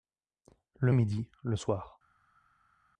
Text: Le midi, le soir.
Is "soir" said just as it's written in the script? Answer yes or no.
yes